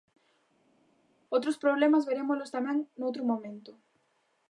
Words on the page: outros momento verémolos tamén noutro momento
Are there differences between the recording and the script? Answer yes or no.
yes